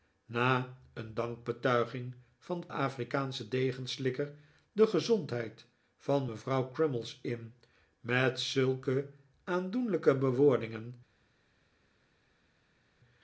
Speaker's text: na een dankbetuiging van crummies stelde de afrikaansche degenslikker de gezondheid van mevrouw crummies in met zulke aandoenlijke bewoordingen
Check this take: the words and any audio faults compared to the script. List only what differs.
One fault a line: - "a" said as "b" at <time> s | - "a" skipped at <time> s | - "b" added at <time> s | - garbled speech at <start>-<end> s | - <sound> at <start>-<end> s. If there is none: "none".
- "crummies stelde de" skipped at 2.6 s